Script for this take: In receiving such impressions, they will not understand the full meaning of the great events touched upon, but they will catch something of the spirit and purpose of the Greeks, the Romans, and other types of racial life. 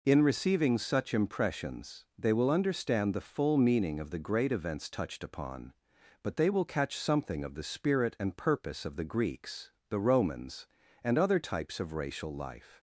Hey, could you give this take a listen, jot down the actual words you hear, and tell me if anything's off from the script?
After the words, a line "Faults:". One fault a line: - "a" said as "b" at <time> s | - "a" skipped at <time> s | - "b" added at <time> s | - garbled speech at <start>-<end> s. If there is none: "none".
In receiving such impressions, they will understand the full meaning of the great events touched upon, but they will catch something of the spirit and purpose of the Greeks, the Romans, and other types of racial life.
Faults:
- "not" skipped at 2.5 s